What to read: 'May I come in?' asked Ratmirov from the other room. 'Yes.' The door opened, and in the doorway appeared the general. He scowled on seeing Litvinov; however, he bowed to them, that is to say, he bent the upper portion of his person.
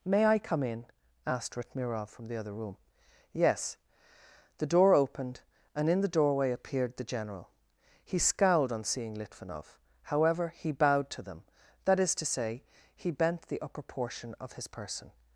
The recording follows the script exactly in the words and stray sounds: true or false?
true